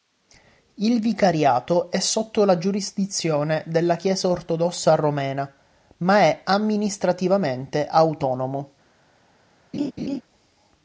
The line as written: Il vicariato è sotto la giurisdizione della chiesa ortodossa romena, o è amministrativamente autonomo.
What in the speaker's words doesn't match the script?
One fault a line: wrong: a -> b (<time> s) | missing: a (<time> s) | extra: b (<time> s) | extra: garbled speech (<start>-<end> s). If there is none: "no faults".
wrong: o -> ma (6.0 s)